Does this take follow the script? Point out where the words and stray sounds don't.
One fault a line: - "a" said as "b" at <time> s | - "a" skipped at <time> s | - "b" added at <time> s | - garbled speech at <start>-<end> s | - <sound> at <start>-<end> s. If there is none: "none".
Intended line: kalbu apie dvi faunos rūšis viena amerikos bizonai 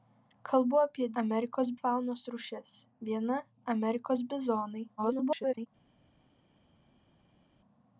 - "dvi" said as "amerikos" at 1.2 s
- garbled speech at 5.0-5.7 s